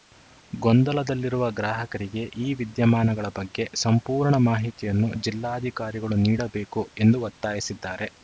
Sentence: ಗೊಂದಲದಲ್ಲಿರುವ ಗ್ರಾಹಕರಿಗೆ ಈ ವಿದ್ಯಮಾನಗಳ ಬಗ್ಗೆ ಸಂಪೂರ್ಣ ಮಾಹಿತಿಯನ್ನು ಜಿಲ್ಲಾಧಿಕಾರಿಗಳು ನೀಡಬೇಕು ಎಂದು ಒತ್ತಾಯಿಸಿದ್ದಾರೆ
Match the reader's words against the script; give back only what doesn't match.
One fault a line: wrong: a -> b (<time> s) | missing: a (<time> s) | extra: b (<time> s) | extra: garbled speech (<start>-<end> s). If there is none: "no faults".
no faults